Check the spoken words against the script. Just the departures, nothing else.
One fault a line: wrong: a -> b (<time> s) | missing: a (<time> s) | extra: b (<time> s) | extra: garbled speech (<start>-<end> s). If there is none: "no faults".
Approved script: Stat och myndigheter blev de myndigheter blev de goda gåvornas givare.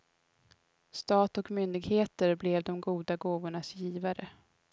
missing: myndigheter blev de (2.8 s)